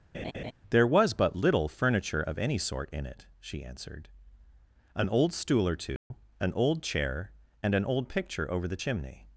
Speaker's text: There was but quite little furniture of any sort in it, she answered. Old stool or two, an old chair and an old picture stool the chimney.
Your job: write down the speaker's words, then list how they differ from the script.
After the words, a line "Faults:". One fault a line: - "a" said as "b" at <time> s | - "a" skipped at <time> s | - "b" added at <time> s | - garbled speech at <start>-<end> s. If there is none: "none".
There was but little furniture of any sort in it, she answered. An old stool or two, an old chair and an old picture over the chimney.
Faults:
- "quite" skipped at 1.4 s
- "An" added at 5.0 s
- "stool" said as "over" at 8.5 s